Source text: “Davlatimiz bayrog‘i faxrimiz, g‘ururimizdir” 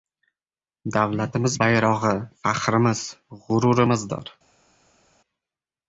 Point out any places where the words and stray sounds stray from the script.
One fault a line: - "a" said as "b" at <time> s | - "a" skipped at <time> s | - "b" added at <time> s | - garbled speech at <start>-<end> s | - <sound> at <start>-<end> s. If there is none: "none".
none